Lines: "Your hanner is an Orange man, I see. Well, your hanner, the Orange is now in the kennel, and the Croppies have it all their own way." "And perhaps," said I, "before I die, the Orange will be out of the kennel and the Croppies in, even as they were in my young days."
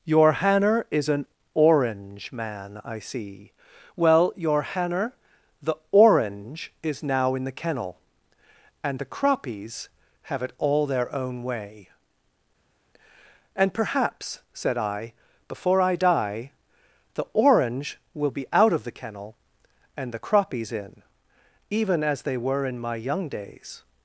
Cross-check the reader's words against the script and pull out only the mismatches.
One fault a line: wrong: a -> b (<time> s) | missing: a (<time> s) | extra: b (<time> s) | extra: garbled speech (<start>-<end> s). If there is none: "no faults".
no faults